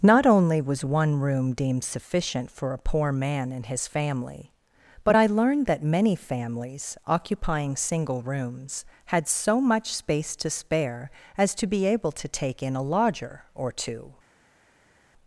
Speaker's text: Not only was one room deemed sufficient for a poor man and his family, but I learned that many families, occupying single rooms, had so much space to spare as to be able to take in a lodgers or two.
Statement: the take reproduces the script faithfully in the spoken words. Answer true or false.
false